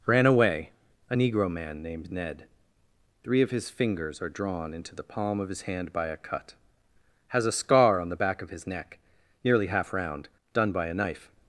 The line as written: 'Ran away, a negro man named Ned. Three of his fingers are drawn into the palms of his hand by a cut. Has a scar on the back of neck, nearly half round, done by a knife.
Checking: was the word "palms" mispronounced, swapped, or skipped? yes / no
yes